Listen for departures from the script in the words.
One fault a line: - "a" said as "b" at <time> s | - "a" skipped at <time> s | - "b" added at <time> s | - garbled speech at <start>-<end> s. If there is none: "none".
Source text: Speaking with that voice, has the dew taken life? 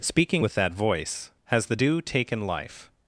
none